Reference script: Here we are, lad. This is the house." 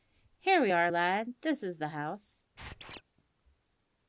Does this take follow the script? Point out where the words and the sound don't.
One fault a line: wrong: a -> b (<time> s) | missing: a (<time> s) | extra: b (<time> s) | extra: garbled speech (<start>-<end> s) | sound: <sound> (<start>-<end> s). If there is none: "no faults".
sound: squeak (2.6-3.0 s)